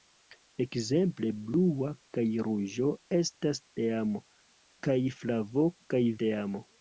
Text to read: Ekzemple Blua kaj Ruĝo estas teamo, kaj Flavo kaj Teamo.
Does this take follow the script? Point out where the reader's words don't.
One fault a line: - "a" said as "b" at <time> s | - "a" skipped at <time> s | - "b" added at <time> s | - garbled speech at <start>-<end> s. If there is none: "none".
none